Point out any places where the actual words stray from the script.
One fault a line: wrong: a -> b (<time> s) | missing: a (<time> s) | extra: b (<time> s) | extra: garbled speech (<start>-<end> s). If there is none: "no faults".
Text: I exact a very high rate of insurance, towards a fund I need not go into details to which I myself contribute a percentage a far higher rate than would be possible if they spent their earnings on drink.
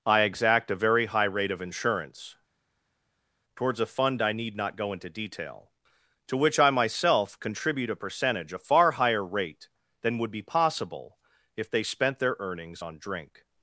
wrong: details -> detail (5.1 s)